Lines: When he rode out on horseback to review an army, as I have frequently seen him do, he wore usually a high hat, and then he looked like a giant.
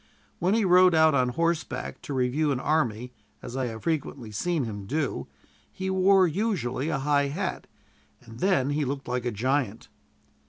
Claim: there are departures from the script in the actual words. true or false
false